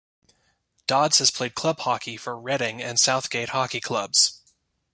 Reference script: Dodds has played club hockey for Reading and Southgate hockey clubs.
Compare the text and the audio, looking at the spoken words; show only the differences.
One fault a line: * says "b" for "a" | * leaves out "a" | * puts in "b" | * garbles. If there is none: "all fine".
all fine